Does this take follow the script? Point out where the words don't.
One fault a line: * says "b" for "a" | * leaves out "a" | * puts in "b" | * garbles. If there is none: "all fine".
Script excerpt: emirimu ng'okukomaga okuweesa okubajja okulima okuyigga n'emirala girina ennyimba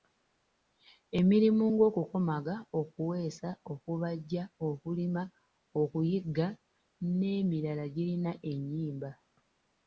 all fine